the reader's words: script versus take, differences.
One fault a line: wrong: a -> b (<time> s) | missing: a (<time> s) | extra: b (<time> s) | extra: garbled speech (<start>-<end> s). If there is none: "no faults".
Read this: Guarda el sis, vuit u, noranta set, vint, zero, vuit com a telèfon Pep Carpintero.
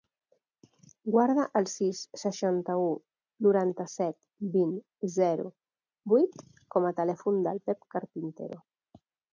wrong: vuit -> seixanta (2.2 s)
extra: del (7.5 s)